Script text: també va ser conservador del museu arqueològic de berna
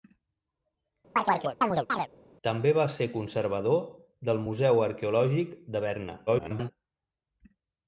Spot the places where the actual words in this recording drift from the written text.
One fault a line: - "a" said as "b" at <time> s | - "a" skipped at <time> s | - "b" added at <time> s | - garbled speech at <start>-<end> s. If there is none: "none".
- garbled speech at 6.3-6.7 s